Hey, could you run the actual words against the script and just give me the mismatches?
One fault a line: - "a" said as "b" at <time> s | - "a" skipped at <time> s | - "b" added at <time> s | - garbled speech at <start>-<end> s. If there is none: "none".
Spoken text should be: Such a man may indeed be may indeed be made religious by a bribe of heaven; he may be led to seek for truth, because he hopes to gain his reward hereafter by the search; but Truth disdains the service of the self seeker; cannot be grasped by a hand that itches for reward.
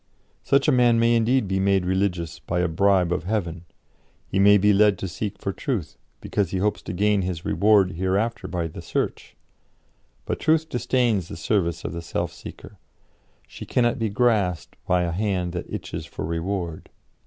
- "may indeed be" skipped at 1.6 s
- "she" added at 13.5 s